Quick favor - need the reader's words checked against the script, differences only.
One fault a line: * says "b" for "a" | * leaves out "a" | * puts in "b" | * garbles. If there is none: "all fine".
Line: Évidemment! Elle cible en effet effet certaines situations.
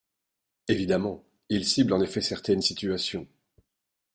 * says "Il" for "Elle"
* leaves out "effet"